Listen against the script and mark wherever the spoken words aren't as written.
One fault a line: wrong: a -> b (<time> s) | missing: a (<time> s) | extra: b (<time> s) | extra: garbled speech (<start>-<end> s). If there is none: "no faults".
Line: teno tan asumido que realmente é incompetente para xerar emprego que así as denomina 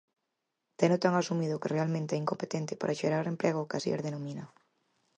no faults